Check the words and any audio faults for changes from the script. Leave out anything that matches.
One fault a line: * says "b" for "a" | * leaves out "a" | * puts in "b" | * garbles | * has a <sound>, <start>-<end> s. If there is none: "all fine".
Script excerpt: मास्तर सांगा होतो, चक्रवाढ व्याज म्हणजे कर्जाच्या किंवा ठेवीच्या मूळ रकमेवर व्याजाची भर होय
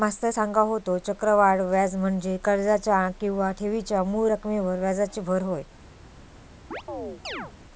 * has a chirp, 6.7-7.5 s